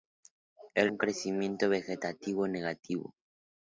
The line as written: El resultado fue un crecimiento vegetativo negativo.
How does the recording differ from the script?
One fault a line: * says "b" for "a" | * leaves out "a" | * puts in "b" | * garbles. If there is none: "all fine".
* leaves out "resultado fue"